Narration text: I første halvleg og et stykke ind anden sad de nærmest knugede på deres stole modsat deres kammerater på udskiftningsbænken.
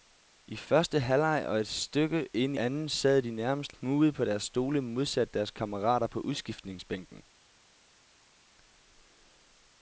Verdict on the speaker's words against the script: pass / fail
pass